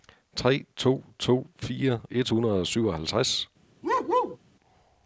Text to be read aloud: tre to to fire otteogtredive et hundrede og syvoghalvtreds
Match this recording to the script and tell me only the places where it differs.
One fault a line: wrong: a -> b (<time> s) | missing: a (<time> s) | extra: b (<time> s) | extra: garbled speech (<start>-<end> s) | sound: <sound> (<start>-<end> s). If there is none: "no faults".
missing: otteogtredive (2.0 s)
sound: bark (3.8-4.4 s)